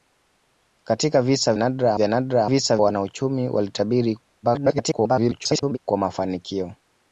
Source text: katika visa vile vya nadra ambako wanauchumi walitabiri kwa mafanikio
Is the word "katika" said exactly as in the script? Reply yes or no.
yes